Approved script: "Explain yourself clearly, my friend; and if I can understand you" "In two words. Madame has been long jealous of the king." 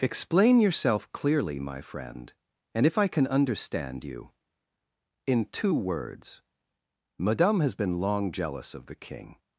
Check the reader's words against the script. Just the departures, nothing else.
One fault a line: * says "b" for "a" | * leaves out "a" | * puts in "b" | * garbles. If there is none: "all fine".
all fine